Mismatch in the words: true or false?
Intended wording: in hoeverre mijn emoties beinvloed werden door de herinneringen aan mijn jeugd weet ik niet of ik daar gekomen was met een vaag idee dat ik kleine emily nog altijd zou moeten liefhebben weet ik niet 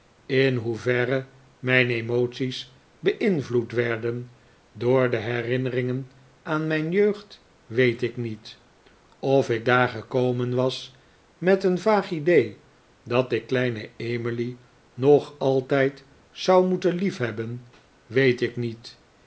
false